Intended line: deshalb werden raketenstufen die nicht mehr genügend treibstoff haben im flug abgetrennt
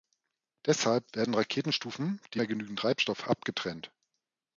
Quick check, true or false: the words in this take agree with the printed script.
false